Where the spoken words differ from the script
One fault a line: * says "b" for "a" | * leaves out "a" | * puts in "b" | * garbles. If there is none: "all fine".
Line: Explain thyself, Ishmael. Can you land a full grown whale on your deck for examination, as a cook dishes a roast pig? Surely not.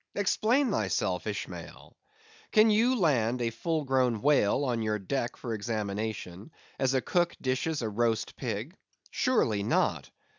all fine